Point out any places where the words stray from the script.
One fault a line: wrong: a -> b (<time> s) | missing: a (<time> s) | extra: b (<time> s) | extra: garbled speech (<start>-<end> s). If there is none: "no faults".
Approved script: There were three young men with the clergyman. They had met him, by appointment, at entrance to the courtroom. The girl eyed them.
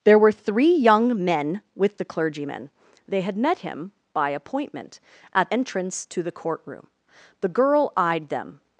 no faults